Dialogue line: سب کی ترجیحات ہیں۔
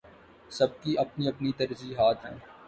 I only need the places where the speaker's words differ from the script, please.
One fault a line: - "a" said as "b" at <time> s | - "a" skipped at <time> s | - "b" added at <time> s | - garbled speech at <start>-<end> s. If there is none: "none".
- "اپنی اپنی" added at 1.0 s